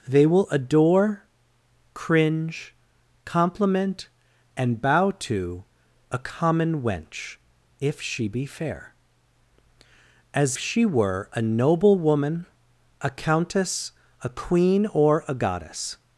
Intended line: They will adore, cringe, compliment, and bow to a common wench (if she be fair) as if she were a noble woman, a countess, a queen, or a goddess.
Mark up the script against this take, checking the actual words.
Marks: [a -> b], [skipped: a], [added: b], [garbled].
They will adore, cringe, compliment, and bow to a common wench (if she be fair) as [skipped: if] she were a noble woman, a countess, a queen, or a goddess.